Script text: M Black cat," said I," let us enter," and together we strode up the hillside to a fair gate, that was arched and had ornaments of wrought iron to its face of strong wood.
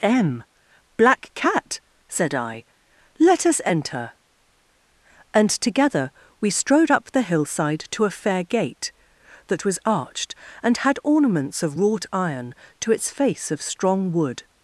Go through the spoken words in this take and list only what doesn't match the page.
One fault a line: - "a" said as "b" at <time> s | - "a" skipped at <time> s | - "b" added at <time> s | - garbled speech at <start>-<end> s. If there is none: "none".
none